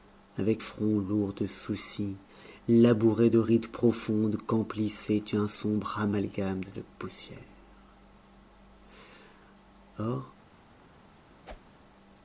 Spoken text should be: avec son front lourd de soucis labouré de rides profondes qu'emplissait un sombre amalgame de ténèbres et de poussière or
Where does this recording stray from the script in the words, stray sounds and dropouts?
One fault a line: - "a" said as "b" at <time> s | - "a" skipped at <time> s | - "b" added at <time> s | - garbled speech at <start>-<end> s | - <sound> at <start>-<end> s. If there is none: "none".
- "son" skipped at 0.6 s
- "de ténèbres" skipped at 6.6 s
- whoosh at 11.4-11.8 s